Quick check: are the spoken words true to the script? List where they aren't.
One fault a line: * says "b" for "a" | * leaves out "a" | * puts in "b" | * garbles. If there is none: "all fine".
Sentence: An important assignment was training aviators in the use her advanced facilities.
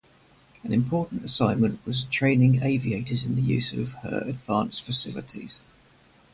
* puts in "of"